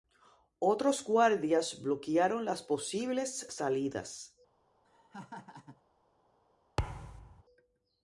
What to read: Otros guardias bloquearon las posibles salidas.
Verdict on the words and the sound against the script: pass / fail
fail